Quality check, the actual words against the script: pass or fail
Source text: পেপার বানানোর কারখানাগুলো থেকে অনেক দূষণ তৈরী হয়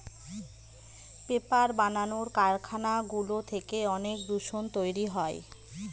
pass